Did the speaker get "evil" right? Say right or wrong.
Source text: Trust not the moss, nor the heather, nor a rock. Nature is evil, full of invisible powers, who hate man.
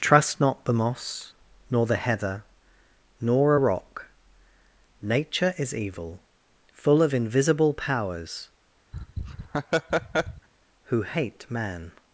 right